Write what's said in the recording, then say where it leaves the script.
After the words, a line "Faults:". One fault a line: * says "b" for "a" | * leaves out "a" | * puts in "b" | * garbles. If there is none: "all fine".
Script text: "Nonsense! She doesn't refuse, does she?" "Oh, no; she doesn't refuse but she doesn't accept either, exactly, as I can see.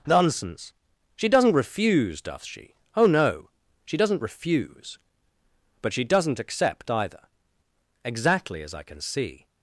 "Nonsense! She doesn't refuse, doth she?" "Oh, no; she doesn't refuse but she doesn't accept either, exactly, as I can see.
Faults:
* says "doth" for "does"